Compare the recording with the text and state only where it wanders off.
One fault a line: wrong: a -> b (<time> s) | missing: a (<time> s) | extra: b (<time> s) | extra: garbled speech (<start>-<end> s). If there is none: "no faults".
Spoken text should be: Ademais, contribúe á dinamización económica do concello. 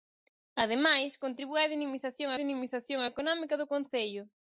extra: dinamización (2.4 s)